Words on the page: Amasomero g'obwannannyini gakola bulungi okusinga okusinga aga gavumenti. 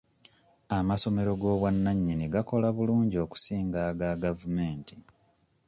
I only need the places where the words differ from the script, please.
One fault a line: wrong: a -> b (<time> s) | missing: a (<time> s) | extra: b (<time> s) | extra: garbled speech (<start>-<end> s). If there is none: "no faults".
missing: okusinga (3.8 s)